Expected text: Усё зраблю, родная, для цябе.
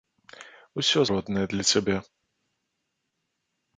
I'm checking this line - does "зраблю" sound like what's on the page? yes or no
no